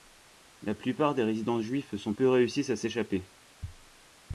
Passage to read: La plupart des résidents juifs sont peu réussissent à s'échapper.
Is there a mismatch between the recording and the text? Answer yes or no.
no